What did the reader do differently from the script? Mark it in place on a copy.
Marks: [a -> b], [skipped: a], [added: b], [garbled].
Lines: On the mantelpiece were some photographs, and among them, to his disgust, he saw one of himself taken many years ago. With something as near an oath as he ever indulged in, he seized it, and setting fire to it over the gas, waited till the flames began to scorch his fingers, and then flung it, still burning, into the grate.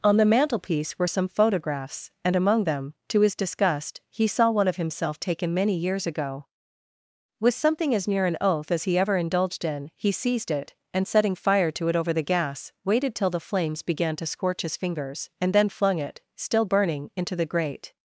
On the mantelpiece were some photographs, and among them, to his disgust, he saw one of himself taken many years ago. With something as near an oath as he ever indulged in, he seized it, and setting fire to it over the gas, waited till the flames began to scorch his fingers, and then flung it, still burning, into the grate.